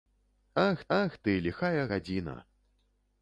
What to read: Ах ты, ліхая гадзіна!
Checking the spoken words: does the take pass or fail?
fail